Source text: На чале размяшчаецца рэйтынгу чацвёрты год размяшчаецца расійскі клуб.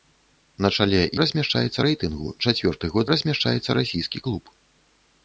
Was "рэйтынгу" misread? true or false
false